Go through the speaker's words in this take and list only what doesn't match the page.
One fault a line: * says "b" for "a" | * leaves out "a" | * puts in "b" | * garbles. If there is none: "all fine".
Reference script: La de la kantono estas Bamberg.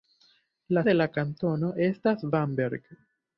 all fine